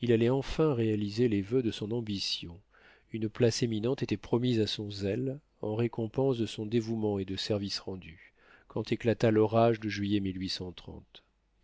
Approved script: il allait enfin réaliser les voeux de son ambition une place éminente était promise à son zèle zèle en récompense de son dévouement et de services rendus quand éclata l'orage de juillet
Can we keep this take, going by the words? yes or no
no